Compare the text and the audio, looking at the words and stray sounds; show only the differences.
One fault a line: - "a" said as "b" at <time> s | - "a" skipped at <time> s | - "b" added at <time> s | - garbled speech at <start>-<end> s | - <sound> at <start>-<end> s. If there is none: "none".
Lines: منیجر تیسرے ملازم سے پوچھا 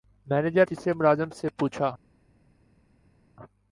none